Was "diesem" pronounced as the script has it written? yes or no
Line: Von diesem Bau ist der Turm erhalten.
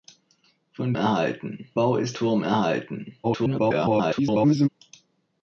no